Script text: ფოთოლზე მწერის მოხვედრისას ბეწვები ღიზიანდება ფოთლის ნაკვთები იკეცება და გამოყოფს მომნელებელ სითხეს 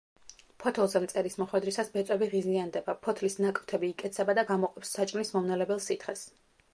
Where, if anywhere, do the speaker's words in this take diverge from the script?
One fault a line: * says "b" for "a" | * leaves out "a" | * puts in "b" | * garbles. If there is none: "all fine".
* puts in "საჭმლის"